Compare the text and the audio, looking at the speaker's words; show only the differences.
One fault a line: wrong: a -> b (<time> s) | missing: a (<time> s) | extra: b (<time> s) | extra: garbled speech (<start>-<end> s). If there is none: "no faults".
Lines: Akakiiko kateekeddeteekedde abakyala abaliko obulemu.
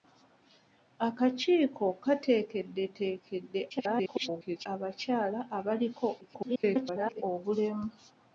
extra: garbled speech (3.7-4.7 s)
extra: garbled speech (6.2-7.2 s)